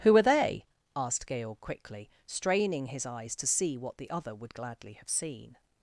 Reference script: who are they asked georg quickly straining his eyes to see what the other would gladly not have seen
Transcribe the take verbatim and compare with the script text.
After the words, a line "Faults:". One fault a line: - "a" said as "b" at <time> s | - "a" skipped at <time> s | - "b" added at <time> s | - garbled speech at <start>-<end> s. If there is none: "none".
who are they asked georg quickly straining his eyes to see what the other would gladly have seen
Faults:
- "not" skipped at 4.9 s